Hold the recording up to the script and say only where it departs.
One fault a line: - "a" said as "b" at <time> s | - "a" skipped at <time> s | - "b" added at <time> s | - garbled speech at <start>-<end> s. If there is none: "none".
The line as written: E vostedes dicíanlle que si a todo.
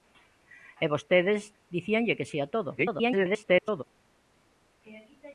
- garbled speech at 2.8-3.8 s